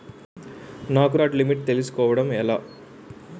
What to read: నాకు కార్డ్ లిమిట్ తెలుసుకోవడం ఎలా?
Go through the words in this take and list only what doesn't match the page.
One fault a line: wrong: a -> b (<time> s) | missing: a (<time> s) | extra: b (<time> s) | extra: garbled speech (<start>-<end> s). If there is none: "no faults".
no faults